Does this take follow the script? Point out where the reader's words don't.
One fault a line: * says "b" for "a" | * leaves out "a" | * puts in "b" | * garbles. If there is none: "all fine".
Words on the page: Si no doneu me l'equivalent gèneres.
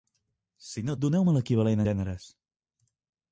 all fine